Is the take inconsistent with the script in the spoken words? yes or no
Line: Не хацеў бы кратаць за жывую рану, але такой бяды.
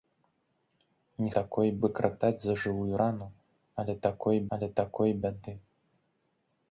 yes